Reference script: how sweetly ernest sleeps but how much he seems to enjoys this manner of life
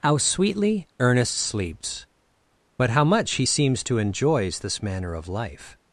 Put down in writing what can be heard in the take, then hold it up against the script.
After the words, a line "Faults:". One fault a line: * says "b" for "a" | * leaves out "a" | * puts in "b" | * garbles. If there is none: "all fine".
how sweetly ernest sleeps but how much he seems to enjoys this manner of life
Faults:
all fine